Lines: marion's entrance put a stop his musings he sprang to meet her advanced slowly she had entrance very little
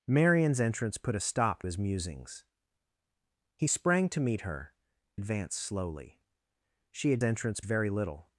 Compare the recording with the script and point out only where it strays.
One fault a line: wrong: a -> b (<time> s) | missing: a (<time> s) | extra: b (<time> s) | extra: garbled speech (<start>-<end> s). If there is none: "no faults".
no faults